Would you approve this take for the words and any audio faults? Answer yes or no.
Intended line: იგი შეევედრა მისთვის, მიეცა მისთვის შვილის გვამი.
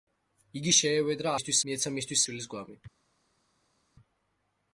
yes